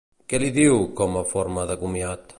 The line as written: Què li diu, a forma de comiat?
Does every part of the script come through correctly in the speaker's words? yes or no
no